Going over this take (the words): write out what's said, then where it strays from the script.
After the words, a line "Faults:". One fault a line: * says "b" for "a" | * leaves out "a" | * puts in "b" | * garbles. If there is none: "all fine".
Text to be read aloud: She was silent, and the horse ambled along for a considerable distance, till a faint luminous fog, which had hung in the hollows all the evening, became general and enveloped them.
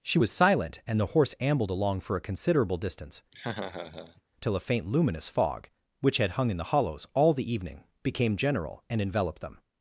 She was silent, and the horse ambled along for a considerable distance, till a faint luminous fog, which had hung in the hollows all the evening, became general and enveloped them.
Faults:
all fine